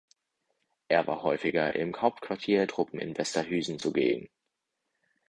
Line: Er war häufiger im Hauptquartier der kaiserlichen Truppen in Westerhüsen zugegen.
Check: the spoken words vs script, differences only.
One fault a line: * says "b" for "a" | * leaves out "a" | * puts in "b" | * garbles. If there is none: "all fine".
* leaves out "der kaiserlichen"